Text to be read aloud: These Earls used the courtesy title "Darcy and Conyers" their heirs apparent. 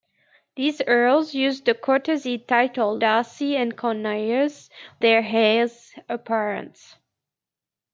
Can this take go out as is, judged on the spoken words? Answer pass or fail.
pass